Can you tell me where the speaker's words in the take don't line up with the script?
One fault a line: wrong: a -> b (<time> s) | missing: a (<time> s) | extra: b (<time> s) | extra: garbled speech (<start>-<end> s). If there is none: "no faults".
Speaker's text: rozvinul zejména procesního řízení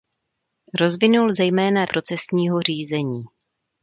no faults